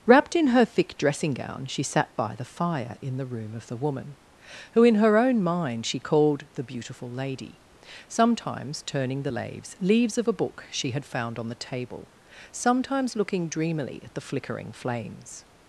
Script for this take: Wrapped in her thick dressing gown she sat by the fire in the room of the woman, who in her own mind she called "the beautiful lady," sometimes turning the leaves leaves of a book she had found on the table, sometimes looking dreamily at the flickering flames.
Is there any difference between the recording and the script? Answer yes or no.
no